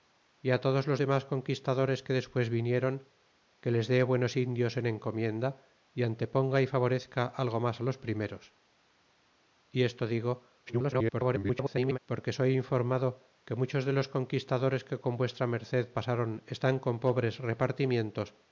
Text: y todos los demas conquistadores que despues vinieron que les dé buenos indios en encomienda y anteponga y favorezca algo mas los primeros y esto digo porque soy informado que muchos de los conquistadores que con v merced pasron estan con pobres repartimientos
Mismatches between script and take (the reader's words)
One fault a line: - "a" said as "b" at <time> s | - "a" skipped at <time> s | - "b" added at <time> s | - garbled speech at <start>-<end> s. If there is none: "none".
- garbled speech at 10.7-12.0 s